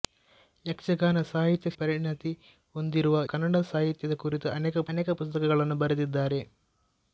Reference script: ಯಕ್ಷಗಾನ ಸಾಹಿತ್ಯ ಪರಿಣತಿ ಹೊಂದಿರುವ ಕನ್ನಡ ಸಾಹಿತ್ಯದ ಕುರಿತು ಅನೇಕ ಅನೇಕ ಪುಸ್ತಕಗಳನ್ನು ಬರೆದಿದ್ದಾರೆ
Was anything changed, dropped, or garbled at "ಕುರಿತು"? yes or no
no